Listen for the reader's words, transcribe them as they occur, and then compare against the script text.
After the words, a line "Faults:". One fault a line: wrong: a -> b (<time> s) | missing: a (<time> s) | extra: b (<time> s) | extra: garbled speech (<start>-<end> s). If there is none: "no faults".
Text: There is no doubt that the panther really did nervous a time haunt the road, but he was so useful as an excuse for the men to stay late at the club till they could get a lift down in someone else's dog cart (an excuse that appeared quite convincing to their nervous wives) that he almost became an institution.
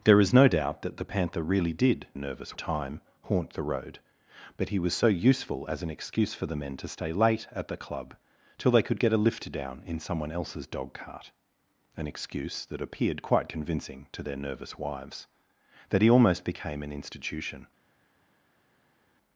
There is no doubt that the panther really did nervous a time haunt the road, but he was so useful as an excuse for the men to stay late at the club till they could get a lift down in someone else's dog cart (an excuse that appeared quite convincing to their nervous wives) that he almost became an institution.
Faults:
no faults